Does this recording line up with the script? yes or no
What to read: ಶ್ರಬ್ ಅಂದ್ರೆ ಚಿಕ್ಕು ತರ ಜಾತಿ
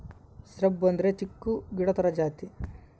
no